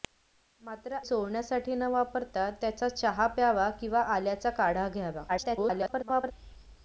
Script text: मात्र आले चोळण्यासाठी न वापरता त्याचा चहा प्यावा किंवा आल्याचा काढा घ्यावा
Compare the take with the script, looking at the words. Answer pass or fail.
fail